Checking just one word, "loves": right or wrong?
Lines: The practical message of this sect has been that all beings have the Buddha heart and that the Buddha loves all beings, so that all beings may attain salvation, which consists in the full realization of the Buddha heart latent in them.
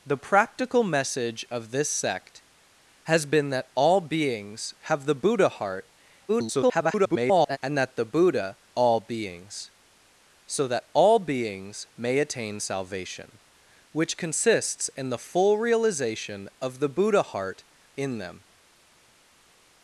wrong